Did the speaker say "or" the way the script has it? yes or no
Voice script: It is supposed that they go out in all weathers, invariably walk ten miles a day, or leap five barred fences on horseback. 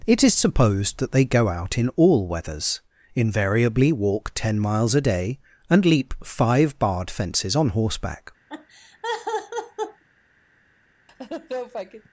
no